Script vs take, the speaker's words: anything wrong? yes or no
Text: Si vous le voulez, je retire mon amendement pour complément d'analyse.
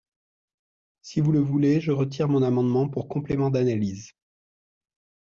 no